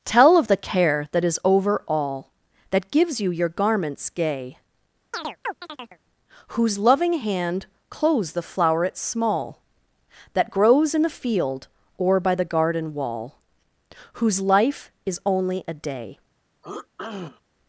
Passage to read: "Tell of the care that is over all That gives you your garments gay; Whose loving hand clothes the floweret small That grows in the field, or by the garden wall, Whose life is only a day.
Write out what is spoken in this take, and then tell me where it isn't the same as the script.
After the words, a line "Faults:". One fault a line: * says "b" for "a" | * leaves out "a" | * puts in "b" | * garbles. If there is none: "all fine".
"Tell of the care that is over all That gives you your garments gay; Whose loving hand clothes the floweret small That grows in the field, or by the garden wall, Whose life is only a day.
Faults:
all fine